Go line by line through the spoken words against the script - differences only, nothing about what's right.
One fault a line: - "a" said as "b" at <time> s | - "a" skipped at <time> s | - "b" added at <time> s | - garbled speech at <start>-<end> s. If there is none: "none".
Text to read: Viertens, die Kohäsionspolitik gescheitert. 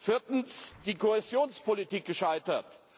none